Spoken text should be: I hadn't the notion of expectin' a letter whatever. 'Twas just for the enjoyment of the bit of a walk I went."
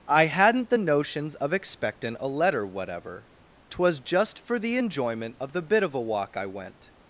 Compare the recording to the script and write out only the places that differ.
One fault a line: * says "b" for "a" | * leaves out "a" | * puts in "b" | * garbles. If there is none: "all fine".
* says "notions" for "notion"